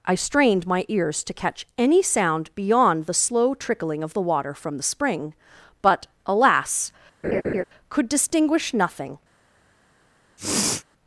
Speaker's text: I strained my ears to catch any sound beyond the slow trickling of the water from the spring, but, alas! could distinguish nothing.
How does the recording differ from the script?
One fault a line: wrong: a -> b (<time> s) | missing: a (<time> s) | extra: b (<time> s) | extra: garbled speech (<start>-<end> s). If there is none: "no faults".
no faults